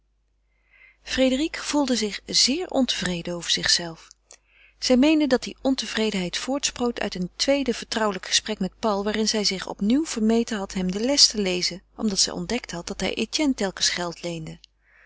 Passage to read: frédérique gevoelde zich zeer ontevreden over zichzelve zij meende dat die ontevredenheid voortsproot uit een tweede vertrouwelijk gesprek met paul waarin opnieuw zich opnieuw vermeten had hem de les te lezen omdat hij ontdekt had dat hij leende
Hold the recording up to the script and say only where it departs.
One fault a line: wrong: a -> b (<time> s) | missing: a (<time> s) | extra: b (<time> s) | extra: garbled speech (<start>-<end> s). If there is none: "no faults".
wrong: opnieuw -> zij (9.3 s)
wrong: hij -> zij (12.2 s)
extra: etienne telkens geld (13.1 s)